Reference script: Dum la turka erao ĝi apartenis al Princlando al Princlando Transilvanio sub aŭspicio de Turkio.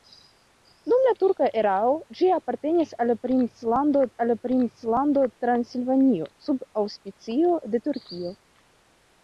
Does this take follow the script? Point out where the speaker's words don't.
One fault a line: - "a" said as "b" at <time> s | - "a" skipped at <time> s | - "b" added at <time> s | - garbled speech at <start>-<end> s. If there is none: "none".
none